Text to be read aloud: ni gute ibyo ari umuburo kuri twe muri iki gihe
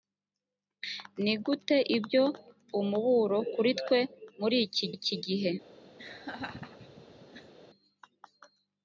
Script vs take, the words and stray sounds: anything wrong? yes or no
yes